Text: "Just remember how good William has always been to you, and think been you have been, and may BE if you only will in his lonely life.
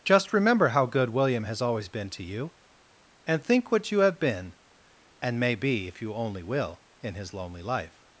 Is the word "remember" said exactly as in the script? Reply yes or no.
yes